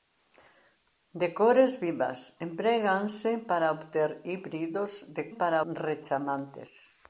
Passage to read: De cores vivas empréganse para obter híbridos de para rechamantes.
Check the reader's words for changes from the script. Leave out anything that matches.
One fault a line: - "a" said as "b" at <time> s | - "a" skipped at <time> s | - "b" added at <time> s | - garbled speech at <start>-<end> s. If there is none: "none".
none